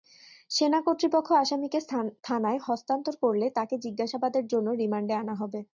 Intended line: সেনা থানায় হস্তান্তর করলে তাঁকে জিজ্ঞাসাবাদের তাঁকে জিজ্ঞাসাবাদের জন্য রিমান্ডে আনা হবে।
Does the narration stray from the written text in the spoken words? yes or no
yes